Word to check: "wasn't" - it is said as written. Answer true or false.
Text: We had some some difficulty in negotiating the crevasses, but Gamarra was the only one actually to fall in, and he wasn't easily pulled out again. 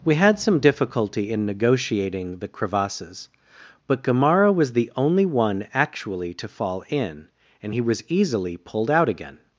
false